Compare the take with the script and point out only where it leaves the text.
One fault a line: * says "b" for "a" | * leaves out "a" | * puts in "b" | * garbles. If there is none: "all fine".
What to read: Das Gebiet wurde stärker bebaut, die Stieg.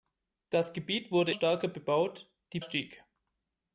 all fine